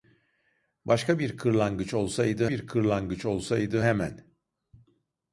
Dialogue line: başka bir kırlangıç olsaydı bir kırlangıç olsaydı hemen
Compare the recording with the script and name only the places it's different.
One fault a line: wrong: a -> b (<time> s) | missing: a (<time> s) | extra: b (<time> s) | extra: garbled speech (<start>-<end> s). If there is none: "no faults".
no faults